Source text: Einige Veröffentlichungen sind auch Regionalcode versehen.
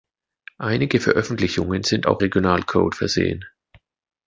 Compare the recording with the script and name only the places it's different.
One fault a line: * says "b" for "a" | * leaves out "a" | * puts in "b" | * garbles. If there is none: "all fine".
all fine